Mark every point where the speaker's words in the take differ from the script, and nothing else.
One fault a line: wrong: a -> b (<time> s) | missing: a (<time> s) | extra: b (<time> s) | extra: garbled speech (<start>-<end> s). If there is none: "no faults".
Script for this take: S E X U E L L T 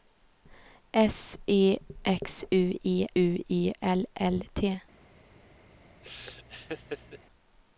extra: U E (3.1 s)